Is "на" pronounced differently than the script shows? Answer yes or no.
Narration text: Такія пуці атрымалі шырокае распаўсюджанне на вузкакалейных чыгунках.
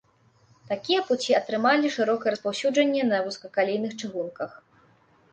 no